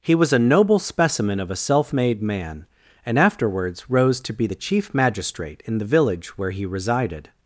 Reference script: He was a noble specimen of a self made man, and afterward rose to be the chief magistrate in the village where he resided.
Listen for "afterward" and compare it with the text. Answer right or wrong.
wrong